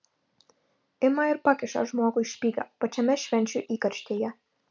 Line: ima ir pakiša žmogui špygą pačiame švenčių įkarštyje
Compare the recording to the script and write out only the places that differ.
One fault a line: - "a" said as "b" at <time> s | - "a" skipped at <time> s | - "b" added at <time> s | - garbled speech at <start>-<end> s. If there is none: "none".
none